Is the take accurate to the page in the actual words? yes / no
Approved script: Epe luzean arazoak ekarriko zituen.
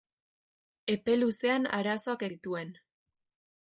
no